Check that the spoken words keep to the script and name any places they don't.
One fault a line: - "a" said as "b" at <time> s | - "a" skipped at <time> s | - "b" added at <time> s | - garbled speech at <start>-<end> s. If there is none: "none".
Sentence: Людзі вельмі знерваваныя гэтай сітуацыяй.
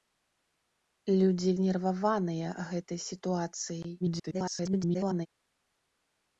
- "вельмі" skipped at 1.5 s
- garbled speech at 4.0-5.3 s